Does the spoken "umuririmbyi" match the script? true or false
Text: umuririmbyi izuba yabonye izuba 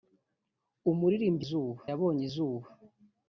true